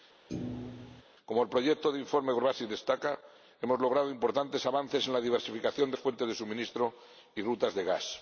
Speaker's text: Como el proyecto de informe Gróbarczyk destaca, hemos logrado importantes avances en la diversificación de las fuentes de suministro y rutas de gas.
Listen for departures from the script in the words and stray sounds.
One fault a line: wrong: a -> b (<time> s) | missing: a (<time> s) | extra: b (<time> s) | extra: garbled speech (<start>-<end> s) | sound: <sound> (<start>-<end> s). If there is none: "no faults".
sound: thud (0.3-1.0 s)
missing: las (6.0 s)